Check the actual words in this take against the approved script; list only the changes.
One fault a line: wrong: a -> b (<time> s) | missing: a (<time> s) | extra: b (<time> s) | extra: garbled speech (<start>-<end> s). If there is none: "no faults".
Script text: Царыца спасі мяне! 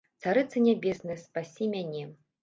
extra: нябесная (0.7 s)